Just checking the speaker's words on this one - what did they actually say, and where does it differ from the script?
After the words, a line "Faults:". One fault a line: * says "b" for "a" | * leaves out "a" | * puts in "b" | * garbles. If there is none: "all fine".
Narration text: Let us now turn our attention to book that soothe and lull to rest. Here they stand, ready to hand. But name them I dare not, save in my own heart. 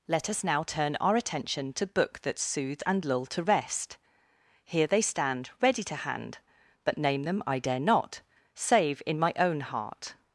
Let us now turn our attention to book that soothe and lull to rest. Here they stand, ready to hand. But name them I dare not, save in my own heart.
Faults:
all fine